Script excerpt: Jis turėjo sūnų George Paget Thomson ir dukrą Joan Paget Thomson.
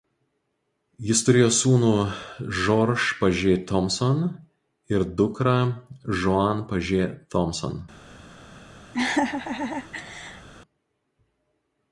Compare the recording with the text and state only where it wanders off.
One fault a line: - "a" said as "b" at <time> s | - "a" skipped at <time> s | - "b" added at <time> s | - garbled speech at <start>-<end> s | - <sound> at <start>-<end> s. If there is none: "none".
- laugh at 8.9-10.5 s